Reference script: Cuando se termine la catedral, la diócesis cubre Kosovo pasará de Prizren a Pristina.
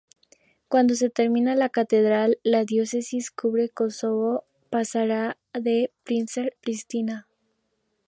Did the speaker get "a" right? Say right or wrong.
wrong